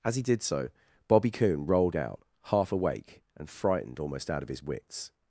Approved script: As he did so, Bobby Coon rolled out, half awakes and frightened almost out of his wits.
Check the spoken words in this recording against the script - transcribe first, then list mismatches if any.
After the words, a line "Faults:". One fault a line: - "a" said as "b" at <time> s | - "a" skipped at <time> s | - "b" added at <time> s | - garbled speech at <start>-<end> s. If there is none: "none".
As he did so, Bobby Coon rolled out, half awake and frightened almost out of his wits.
Faults:
- "awakes" said as "awake" at 2.7 s